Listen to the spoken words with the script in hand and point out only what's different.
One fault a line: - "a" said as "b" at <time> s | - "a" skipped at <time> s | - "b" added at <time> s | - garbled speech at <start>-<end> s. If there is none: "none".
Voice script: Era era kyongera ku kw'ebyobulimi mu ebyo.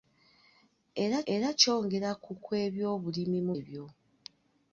none